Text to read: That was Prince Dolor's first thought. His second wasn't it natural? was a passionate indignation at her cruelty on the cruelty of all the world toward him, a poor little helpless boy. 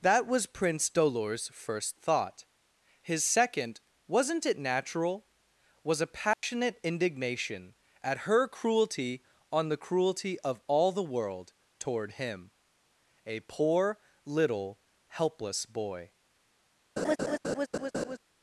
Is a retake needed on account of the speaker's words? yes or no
no